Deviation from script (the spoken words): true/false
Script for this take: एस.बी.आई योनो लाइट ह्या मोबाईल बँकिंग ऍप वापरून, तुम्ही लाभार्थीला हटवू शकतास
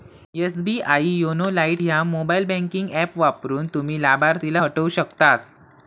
false